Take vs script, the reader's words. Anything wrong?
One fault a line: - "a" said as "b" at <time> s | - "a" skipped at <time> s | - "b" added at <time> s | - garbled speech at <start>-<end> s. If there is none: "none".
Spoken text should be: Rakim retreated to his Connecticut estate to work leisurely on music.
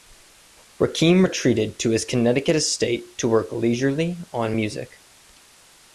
none